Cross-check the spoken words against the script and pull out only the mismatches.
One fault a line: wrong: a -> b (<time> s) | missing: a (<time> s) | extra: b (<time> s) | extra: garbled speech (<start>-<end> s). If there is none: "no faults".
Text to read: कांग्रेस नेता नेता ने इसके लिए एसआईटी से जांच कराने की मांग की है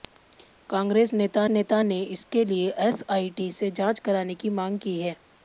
no faults